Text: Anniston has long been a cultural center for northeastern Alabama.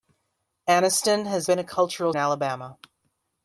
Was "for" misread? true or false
true